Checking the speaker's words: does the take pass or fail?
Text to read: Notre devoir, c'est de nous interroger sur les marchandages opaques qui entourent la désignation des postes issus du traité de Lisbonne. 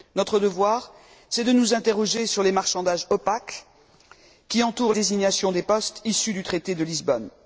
fail